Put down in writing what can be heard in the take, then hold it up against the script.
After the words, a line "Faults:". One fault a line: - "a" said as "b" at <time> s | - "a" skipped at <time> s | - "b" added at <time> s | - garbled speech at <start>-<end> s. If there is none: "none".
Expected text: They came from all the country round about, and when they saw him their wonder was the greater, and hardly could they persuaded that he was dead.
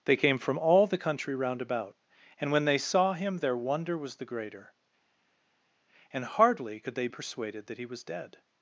They came from all the country round about, and when they saw him their wonder was the greater, and hardly could they persuaded that he was dead.
Faults:
none